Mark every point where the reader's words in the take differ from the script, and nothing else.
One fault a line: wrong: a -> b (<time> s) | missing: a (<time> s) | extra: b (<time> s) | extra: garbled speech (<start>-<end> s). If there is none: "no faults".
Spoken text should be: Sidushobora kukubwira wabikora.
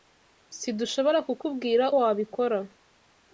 no faults